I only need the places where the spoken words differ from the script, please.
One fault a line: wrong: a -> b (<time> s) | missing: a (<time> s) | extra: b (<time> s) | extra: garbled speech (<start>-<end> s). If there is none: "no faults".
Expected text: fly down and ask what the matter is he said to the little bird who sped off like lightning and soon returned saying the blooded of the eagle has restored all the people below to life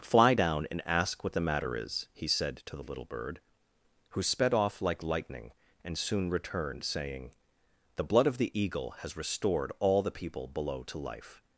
wrong: blooded -> blood (8.0 s)